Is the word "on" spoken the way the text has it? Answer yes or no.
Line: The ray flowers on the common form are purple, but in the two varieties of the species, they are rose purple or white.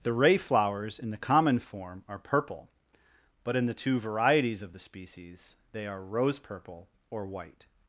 no